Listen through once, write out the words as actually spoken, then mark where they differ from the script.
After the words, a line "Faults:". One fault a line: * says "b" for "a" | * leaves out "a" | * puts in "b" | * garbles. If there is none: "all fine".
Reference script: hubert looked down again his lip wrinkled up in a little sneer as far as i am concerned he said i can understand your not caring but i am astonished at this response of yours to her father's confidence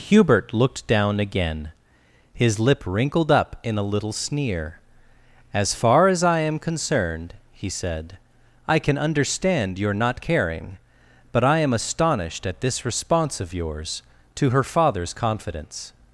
hubert looked down again his lip wrinkled up in a little sneer as far as i am concerned he said i can understand your not caring but i am astonished at this response of yours to her father's confidence
Faults:
all fine